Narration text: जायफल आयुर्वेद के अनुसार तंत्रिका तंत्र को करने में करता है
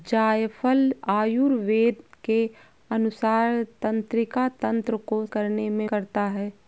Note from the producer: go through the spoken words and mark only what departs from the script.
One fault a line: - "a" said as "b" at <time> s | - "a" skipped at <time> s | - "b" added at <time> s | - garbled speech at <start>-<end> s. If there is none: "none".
none